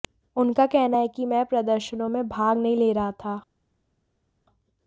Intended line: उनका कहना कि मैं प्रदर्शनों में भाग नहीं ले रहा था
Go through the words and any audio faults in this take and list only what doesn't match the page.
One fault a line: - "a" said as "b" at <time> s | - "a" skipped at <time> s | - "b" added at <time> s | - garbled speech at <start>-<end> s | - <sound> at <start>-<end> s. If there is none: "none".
- "है" added at 1.0 s